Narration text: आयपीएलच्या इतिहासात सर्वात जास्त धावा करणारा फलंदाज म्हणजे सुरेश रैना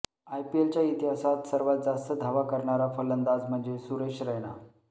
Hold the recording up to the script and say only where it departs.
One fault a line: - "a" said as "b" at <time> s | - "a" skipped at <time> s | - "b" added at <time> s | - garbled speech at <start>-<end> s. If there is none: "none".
none